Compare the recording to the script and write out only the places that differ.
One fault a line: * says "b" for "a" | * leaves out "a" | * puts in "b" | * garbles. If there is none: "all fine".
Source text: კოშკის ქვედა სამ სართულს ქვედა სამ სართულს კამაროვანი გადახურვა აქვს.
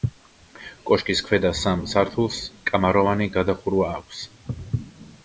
* leaves out "ქვედა სამ სართულს"